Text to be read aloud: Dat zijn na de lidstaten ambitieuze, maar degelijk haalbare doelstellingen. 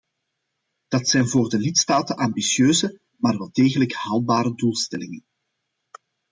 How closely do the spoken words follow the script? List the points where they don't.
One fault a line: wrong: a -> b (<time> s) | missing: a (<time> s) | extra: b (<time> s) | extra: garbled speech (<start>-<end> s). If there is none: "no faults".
wrong: na -> voor (1.3 s)
extra: wel (3.4 s)